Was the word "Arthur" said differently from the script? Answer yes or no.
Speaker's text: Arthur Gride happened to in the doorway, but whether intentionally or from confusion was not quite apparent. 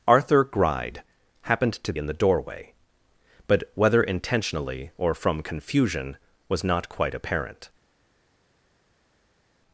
no